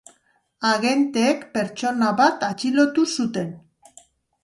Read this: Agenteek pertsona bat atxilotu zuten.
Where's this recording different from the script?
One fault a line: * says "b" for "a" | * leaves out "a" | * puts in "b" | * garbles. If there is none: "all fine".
all fine